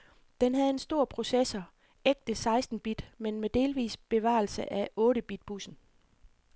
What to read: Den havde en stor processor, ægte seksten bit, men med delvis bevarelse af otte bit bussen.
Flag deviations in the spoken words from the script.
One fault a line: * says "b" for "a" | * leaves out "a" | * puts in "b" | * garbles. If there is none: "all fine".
all fine